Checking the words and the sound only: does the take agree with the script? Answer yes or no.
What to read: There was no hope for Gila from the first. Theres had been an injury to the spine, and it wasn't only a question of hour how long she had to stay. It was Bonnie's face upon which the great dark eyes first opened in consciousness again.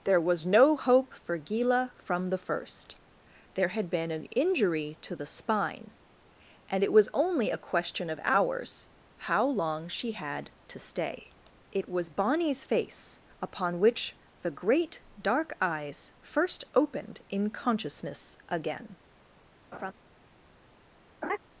no